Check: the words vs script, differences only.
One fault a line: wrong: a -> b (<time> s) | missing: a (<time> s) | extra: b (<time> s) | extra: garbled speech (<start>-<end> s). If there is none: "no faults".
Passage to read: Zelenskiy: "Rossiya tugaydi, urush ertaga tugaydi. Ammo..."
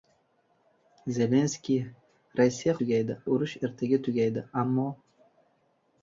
no faults